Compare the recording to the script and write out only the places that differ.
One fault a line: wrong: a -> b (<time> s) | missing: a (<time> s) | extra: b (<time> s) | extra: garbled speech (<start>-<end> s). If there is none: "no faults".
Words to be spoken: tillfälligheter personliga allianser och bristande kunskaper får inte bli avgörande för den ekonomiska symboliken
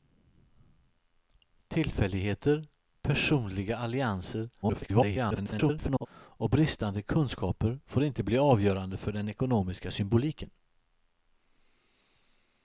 extra: garbled speech (4.6-6.1 s)